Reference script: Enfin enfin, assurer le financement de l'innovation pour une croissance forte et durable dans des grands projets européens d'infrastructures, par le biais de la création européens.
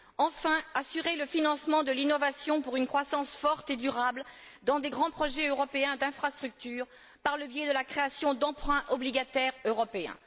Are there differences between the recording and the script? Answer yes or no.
yes